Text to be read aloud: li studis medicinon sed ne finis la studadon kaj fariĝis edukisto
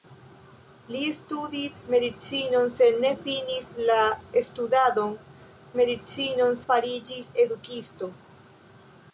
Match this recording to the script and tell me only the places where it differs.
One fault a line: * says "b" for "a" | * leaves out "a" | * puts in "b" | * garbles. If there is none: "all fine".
* says "medicinon" for "kaj"